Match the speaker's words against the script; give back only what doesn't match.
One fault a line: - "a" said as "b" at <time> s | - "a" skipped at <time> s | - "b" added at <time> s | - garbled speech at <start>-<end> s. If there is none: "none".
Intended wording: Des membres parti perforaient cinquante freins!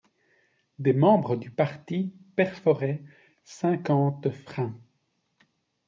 - "du" added at 1.4 s